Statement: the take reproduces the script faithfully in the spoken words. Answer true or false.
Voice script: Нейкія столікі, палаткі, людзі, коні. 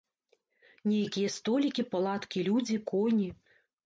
true